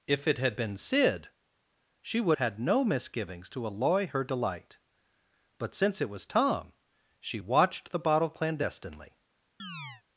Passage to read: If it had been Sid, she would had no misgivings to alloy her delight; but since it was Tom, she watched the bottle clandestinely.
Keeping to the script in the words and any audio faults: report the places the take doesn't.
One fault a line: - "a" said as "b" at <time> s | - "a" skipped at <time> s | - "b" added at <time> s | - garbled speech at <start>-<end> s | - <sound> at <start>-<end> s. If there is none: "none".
- chirp at 9.6-10.0 s